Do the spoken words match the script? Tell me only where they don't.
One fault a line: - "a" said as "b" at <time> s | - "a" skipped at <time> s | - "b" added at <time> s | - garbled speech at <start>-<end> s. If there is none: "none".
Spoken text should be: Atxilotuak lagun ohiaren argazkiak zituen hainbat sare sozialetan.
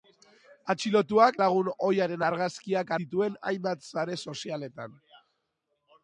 none